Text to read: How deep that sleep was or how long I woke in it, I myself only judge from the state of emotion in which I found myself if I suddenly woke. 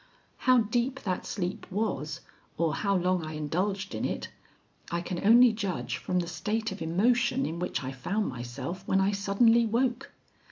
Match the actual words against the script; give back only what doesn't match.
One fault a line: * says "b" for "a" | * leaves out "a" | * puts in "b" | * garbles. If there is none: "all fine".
* says "indulged" for "woke"
* says "can" for "myself"
* says "when" for "if"